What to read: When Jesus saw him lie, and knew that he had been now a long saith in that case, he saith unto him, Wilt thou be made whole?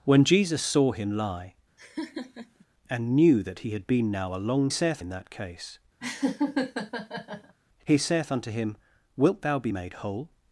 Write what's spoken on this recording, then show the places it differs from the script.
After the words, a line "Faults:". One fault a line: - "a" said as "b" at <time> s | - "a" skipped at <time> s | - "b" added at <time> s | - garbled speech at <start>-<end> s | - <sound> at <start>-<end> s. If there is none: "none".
When Jesus saw him lie, and knew that he had been now a long saith in that case, he saith unto him, Wilt thou be made whole?
Faults:
- laugh at 1.8-2.7 s
- laugh at 6.0-7.5 s